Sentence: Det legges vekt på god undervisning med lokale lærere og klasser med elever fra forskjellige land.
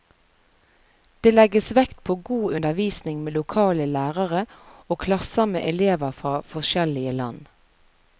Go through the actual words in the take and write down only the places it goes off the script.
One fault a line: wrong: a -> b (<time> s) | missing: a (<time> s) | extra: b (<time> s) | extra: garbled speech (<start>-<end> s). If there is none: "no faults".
no faults